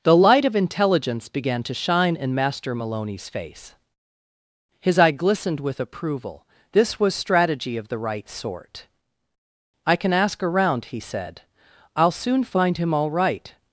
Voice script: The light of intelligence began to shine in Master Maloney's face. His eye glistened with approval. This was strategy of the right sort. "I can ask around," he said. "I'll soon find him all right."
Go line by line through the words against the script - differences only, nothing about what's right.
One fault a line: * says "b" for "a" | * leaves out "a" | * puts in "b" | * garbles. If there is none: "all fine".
all fine